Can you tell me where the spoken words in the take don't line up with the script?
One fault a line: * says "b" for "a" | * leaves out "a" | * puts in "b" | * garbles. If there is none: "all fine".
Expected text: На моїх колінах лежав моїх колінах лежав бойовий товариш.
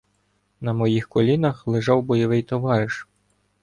* leaves out "моїх колінах лежав"